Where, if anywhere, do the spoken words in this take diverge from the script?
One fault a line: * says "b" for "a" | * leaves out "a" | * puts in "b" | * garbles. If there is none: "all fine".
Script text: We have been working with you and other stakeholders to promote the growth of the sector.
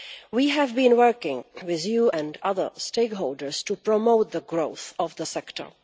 all fine